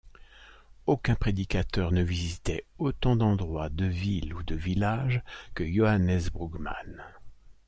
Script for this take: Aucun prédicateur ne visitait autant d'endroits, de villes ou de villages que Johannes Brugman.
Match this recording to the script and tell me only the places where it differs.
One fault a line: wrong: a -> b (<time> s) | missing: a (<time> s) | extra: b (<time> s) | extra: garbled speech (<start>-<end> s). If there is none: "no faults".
no faults